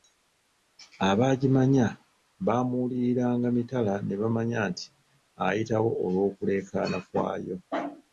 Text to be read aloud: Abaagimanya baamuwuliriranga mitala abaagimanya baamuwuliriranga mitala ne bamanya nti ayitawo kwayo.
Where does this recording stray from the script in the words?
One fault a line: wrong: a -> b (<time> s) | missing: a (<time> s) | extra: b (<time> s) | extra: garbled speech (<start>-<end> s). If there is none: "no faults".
missing: abaagimanya baamuwuliriranga mitala (3.9 s)
extra: olw'okuleekaana (6.0 s)